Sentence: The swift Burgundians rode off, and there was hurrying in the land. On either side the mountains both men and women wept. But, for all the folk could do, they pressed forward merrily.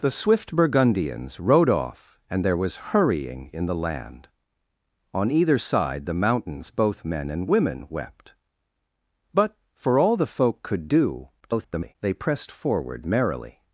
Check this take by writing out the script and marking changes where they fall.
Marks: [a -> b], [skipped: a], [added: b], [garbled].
The swift Burgundians rode off, and there was hurrying in the land. On either side the mountains both men and women wept. But, for all the folk could do, [garbled] they pressed forward merrily.